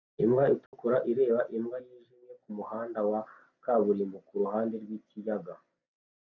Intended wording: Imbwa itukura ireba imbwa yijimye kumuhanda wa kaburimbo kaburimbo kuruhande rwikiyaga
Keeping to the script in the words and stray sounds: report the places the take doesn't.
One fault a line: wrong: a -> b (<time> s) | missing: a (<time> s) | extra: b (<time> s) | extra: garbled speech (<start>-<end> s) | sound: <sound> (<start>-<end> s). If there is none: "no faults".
sound: dropout (0.7-0.7 s)
missing: kaburimbo (4.2 s)